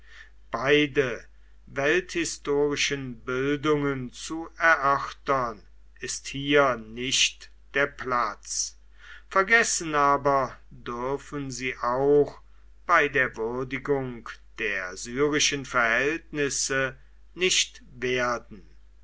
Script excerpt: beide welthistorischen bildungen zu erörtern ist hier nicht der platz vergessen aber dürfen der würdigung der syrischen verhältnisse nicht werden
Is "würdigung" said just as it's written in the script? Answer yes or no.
yes